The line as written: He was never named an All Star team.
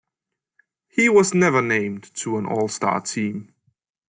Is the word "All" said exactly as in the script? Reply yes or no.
yes